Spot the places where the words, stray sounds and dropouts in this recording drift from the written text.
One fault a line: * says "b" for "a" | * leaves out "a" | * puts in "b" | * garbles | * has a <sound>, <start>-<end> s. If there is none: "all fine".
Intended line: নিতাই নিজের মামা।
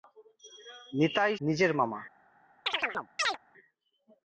* has a chirp, 2.7-3.4 s